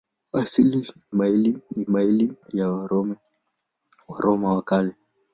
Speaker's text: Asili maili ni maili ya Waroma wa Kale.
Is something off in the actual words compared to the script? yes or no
no